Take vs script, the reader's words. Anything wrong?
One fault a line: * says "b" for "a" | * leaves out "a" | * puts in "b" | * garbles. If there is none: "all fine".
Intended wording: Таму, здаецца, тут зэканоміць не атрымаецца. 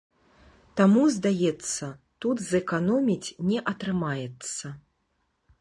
all fine